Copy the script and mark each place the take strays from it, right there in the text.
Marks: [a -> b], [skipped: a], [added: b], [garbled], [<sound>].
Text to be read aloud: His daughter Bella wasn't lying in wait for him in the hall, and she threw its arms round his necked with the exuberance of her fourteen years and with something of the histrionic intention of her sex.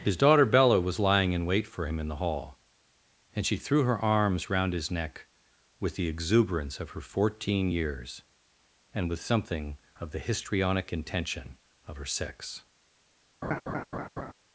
His daughter Bella [wasn't -> was] lying in wait for him in the hall, and she threw [its -> her] arms round his [necked -> neck] with the exuberance of her fourteen years and with something of the histrionic intention of her sex. [laugh]